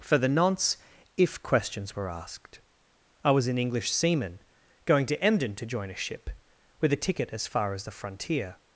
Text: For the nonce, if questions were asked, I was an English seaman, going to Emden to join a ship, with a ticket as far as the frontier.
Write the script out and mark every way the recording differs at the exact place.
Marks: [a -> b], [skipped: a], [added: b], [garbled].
For the nonce, if questions were asked, I was an English seaman, going to Emden to join a ship, with a ticket as far as the frontier.